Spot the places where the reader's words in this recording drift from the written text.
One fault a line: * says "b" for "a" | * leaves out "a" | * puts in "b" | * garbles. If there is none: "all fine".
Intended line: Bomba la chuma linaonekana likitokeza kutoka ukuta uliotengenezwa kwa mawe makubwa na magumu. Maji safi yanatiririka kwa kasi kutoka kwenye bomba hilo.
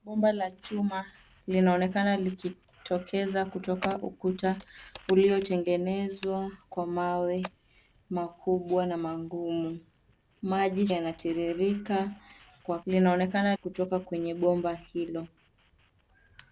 * leaves out "safi"
* says "linaonekana" for "kasi"